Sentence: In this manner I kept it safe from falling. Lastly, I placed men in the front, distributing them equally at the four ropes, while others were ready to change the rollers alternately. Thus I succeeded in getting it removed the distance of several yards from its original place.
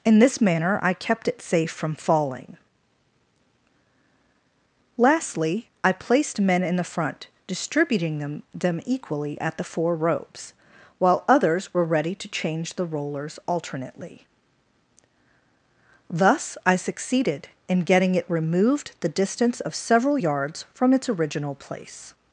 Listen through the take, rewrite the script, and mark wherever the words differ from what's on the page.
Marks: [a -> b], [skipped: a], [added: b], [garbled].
In this manner I kept it safe from falling. Lastly, I placed men in the front, distributing them [added: them] equally at the four ropes, while others were ready to change the rollers alternately. Thus I succeeded in getting it removed the distance of several yards from its original place.